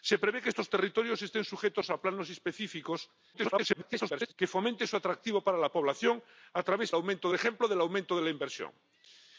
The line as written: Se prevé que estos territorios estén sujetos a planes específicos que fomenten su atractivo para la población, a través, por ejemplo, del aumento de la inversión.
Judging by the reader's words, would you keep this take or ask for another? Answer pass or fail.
fail